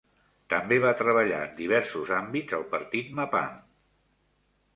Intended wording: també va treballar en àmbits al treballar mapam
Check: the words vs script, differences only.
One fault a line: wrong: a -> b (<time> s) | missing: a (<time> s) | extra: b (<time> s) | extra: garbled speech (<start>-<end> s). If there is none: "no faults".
extra: diversos (1.6 s)
wrong: treballar -> partit (2.7 s)